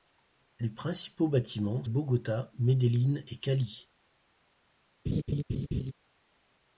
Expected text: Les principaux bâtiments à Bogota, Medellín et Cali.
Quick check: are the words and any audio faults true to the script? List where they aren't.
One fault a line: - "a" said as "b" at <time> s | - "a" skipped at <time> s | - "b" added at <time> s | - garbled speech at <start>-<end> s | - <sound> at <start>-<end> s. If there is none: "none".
- laugh at 5.1-5.9 s